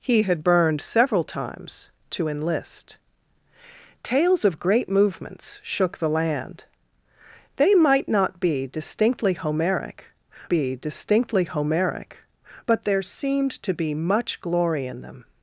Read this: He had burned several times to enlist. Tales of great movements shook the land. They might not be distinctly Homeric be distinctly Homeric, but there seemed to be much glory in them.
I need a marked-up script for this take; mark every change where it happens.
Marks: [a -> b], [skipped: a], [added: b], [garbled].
He had burned several times to enlist. Tales of great movements shook the land. They might not be distinctly Homeric be distinctly Homeric, but there seemed to be much glory in them.